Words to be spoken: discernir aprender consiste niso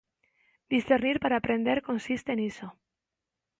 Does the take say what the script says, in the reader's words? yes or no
no